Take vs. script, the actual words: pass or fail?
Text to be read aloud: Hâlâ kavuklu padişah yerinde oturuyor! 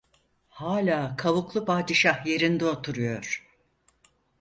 pass